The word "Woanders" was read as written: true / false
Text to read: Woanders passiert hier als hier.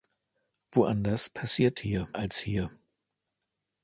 true